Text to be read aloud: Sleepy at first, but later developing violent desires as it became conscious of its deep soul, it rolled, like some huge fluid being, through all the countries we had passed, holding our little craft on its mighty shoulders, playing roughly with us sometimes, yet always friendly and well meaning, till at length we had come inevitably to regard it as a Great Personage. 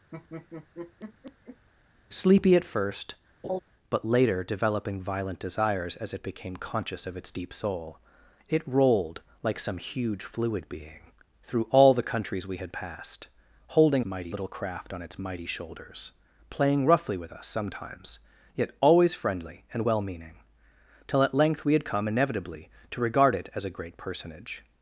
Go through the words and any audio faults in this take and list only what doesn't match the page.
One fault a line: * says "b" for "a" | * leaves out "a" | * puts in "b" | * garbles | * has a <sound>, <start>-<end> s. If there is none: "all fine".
* has a laugh, 0.1-1.7 s
* has a laugh, 3.4-3.6 s
* says "mighty" for "our"